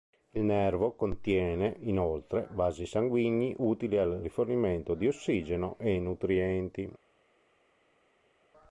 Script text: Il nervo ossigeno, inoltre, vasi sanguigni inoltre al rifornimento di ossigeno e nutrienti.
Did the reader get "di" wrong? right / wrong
right